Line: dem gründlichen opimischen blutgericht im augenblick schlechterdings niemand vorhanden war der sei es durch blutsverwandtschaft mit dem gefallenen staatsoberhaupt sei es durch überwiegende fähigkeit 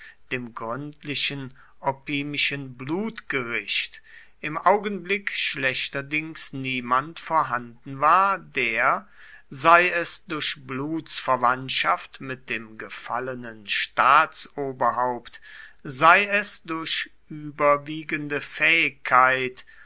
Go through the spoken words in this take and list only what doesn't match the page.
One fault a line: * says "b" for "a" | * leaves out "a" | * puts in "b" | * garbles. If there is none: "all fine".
all fine